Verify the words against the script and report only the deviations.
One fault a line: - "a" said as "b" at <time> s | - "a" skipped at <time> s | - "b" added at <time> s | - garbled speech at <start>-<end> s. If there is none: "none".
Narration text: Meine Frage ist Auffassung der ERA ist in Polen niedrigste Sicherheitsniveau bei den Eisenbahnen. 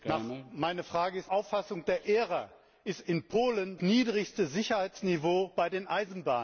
none